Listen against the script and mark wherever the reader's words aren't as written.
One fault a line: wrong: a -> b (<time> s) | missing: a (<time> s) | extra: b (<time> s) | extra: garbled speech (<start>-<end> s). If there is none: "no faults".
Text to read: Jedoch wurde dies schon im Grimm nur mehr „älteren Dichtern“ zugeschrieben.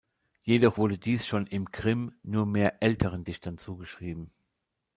no faults